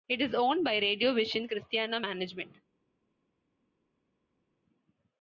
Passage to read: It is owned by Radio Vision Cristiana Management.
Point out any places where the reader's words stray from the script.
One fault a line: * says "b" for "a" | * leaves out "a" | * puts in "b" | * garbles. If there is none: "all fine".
all fine